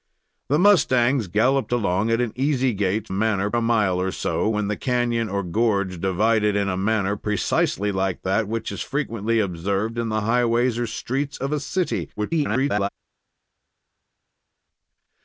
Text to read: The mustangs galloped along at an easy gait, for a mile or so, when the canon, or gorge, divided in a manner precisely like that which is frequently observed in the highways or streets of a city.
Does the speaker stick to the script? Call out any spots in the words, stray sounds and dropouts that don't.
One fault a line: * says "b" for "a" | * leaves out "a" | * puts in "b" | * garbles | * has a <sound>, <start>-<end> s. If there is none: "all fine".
* says "manner" for "for"
* garbles